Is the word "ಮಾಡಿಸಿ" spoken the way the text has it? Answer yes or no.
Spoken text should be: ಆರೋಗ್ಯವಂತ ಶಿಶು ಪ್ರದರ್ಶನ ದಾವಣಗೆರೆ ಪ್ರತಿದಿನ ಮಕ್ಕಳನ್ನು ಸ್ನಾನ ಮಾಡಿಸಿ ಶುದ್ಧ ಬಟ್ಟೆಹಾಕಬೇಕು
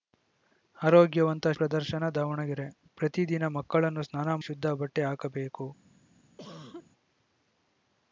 no